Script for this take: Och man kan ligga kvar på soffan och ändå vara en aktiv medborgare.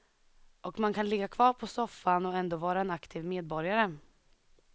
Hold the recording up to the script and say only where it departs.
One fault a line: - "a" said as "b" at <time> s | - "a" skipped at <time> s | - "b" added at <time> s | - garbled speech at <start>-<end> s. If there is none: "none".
none